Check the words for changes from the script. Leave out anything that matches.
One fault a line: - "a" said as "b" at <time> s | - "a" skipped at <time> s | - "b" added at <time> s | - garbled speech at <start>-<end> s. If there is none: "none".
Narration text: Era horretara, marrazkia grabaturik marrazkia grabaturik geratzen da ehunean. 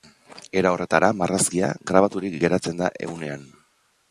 - "marrazkia grabaturik" skipped at 2.4 s